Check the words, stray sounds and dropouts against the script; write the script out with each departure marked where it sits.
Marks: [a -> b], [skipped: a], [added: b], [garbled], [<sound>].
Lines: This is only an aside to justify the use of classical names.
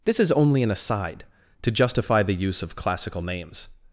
This is only an aside to justify the use of classical names.